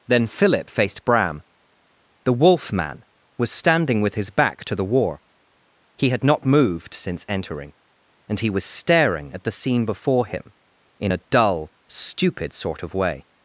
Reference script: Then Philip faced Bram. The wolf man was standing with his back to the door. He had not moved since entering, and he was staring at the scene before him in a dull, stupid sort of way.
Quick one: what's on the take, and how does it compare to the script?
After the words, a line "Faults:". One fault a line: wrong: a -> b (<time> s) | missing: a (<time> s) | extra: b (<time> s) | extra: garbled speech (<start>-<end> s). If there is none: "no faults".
Then Philip faced Bram. The wolf man was standing with his back to the war. He had not moved since entering, and he was staring at the scene before him in a dull, stupid sort of way.
Faults:
wrong: door -> war (4.8 s)